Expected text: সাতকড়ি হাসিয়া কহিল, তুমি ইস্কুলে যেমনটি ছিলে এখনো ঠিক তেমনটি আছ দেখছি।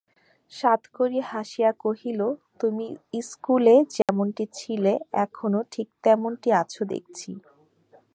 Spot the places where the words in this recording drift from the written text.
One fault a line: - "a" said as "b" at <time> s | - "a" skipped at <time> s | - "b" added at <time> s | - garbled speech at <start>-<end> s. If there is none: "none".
none